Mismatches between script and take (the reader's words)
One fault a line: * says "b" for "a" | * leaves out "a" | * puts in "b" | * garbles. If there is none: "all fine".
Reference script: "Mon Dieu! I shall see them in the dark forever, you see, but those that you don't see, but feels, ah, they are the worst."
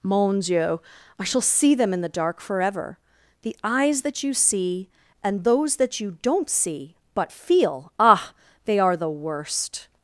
* puts in "the eyes that"
* says "and" for "but"
* says "feel" for "feels"